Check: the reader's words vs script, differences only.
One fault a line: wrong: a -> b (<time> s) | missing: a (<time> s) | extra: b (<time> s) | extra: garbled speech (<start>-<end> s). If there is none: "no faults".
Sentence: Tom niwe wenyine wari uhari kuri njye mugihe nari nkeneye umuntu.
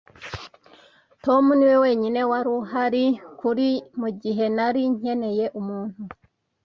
missing: njye (3.7 s)